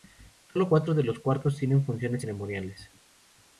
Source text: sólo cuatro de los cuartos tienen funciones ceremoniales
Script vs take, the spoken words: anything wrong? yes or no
no